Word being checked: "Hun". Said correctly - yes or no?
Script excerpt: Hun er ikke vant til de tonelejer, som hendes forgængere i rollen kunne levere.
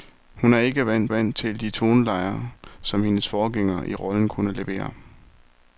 yes